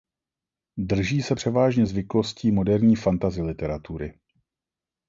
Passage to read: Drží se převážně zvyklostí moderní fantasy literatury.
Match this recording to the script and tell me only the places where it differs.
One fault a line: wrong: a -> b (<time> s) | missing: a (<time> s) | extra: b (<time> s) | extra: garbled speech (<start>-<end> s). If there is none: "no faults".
no faults